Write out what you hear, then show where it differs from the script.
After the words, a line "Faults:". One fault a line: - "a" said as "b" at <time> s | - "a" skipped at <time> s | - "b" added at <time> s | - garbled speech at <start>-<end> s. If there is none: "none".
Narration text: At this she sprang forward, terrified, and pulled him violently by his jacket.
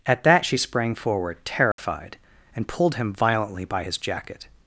At that she sprang forward, terrified, and pulled him violently by his jacket.
Faults:
- "this" said as "that" at 0.2 s